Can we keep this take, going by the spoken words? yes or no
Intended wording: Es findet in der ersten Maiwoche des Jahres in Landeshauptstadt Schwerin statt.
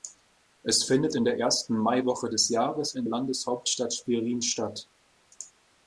yes